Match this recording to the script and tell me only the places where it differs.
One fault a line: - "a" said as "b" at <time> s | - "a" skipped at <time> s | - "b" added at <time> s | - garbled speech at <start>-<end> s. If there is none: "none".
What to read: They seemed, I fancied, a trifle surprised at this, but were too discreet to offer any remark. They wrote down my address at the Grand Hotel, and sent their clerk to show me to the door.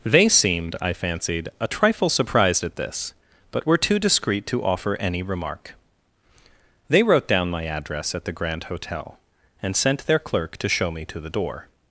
none